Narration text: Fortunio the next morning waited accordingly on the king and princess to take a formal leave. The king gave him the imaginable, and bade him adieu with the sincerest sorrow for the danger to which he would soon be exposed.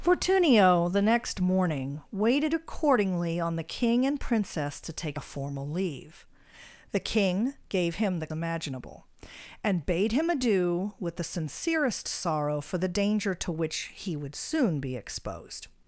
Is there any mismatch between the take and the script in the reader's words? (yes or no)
no